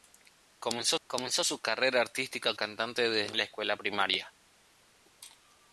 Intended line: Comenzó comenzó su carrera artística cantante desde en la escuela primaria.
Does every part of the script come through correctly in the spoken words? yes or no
yes